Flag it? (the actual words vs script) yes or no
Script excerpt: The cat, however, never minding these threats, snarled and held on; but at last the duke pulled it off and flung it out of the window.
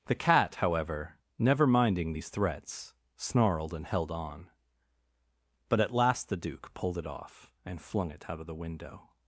no